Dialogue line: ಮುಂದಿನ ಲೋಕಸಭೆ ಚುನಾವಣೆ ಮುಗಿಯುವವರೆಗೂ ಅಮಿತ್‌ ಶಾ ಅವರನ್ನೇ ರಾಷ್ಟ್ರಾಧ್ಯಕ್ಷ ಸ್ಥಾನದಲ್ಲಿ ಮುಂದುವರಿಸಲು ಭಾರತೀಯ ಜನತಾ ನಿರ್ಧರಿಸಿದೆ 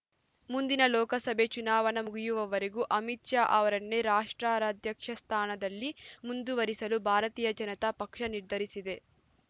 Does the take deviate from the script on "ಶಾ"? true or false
false